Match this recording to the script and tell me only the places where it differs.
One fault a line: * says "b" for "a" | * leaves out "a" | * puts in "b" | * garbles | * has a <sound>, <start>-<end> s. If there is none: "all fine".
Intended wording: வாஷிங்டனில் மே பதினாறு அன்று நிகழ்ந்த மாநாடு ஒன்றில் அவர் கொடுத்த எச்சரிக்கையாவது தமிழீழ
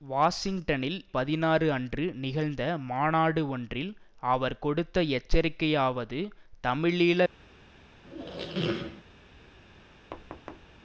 * leaves out "மே"
* has a squeak, 8.0-9.0 s
* has a thud, 10.1-10.7 s